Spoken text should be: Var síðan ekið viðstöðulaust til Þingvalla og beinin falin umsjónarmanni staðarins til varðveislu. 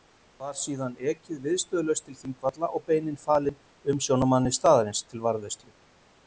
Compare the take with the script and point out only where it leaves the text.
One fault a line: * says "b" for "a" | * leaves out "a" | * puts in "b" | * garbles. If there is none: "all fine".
all fine